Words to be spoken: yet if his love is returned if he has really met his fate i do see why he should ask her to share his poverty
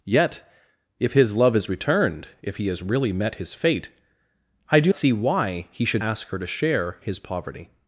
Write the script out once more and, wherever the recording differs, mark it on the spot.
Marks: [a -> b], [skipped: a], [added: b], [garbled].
yet if his love is returned if he has really met his fate i do see why he should ask her to share his poverty